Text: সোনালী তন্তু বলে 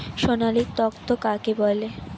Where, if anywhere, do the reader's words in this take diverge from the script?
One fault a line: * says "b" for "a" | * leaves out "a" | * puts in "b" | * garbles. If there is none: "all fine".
* puts in "কাকে"